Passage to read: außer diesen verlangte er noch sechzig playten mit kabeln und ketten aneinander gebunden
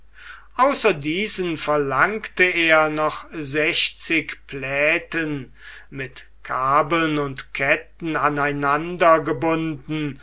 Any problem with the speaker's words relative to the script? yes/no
no